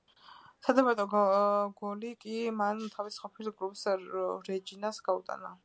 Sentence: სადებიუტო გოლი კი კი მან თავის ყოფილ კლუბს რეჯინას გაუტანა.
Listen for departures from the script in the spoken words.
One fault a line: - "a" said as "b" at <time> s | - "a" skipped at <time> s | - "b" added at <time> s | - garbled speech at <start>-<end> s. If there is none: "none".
- "კი" skipped at 2.4 s